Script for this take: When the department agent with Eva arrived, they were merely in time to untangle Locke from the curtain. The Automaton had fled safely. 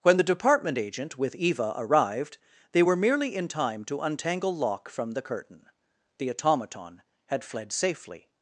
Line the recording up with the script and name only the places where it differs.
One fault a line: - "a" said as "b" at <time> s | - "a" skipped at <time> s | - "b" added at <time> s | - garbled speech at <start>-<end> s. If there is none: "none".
none